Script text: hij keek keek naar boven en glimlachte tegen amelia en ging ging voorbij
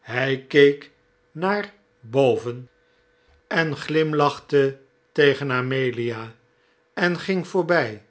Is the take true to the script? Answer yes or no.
no